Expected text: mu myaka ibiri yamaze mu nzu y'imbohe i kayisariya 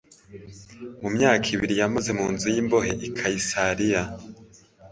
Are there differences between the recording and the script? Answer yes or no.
no